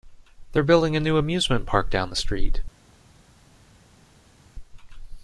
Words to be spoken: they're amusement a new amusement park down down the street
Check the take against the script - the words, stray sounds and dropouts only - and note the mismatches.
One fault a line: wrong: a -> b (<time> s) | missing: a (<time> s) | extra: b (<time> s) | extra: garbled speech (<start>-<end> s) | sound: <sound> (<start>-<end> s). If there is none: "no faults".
wrong: amusement -> building (0.6 s)
missing: down (2.1 s)